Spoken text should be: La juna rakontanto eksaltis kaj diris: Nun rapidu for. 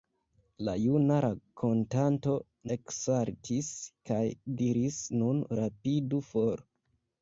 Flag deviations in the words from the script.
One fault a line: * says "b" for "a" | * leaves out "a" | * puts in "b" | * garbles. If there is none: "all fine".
all fine